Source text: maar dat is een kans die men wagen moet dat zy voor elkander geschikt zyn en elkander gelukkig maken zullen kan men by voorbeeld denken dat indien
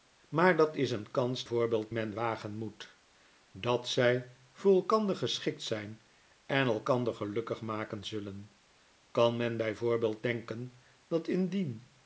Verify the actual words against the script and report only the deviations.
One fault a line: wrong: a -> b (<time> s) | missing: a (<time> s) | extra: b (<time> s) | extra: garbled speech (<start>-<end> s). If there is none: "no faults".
wrong: die -> voorbeeld (1.4 s)